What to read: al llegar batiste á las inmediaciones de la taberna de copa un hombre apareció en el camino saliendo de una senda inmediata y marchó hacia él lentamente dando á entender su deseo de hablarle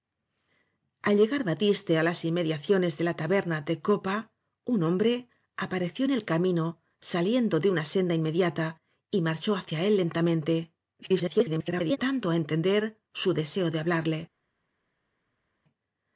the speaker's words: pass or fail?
fail